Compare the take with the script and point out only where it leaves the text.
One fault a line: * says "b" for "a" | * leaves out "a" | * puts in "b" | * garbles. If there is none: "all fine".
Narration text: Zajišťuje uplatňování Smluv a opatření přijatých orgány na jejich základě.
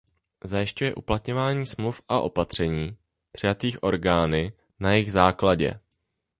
all fine